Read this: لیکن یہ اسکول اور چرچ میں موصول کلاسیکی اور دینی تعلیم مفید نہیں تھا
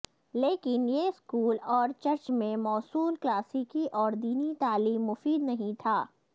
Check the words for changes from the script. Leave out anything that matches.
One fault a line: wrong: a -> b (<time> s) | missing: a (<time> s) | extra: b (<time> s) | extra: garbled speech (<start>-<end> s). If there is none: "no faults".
no faults